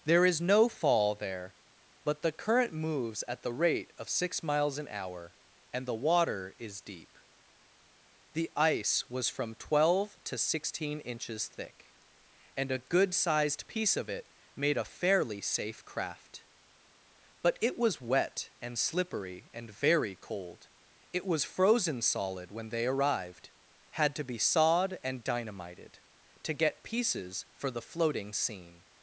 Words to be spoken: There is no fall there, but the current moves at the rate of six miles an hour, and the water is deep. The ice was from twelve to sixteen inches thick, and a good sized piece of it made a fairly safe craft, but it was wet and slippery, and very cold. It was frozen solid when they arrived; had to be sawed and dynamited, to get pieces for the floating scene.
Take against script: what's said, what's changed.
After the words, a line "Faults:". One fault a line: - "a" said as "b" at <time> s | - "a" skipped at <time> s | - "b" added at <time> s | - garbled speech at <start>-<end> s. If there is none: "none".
There is no fall there, but the current moves at the rate of six miles an hour, and the water is deep. The ice was from twelve to sixteen inches thick, and a good sized piece of it made a fairly safe craft, but it was wet and slippery, and very cold. It was frozen solid when they arrived; had to be sawed and dynamited, to get pieces for the floating scene.
Faults:
none